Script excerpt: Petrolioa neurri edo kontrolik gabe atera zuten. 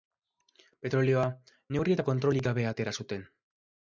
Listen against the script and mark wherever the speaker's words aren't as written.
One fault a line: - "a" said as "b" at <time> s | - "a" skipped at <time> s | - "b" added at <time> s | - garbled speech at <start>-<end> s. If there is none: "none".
- "edo" said as "eta" at 1.9 s